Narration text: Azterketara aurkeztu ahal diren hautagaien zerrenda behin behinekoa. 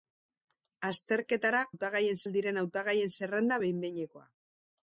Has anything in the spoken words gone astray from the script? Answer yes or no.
yes